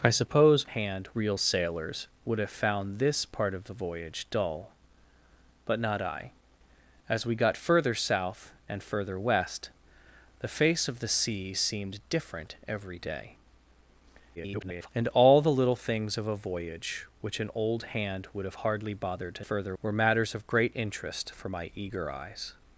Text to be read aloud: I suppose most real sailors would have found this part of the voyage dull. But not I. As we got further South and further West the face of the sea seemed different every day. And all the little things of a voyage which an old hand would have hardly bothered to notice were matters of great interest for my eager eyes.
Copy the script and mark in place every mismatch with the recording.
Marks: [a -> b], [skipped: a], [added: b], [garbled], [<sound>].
I suppose [most -> hand] real sailors would have found this part of the voyage dull. But not I. As we got further South and further West the face of the sea seemed different every day. [garbled] And all the little things of a voyage which an old hand would have hardly bothered to [notice -> further] were matters of great interest for my eager eyes.